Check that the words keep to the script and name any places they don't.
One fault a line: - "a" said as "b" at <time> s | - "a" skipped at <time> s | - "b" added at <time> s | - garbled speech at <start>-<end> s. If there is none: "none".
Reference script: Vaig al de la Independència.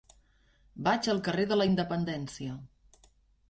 - "carrer" added at 1.3 s